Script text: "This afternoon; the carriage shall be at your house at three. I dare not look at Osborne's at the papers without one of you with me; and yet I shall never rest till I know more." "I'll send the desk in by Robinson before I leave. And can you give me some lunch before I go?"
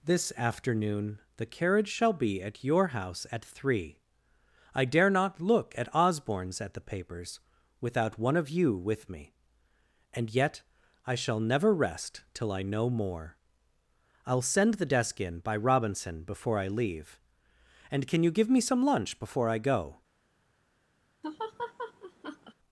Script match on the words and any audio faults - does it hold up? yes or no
no